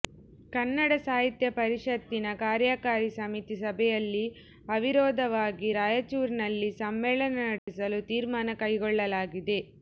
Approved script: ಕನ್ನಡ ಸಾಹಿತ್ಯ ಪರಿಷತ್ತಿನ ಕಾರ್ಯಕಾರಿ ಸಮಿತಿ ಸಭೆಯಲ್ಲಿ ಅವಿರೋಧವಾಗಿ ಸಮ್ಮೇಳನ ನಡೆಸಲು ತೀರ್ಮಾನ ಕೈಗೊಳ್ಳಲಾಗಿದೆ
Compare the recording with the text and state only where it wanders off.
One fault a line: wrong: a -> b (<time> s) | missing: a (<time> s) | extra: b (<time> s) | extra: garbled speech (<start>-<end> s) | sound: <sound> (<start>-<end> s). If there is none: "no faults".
extra: ರಾಯಚೂರಿನಲ್ಲಿ (5.8 s)
sound: dropout (7.6-7.7 s)